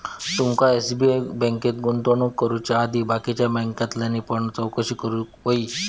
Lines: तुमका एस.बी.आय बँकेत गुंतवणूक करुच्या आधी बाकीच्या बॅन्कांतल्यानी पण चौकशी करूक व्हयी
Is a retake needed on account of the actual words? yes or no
no